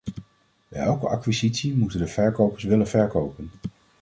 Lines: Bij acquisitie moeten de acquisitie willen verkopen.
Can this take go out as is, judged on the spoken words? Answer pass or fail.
fail